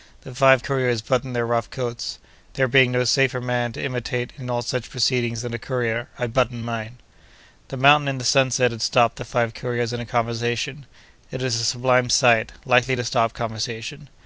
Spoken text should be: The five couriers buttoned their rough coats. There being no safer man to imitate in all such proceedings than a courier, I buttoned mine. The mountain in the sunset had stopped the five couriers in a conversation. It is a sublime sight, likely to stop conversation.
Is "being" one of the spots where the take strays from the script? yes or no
no